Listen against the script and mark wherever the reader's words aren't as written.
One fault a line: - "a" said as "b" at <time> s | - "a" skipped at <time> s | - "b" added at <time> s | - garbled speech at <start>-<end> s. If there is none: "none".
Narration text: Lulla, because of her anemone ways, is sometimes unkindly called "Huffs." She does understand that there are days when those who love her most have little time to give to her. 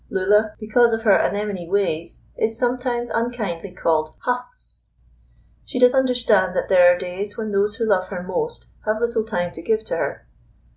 none